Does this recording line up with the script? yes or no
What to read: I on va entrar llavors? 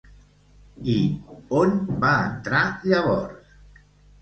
yes